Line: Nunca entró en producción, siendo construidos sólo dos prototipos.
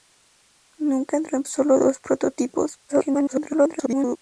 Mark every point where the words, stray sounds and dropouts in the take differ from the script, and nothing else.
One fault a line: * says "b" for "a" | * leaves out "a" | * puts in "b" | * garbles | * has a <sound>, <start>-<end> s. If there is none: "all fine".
* leaves out "producción siendo construidos"
* garbles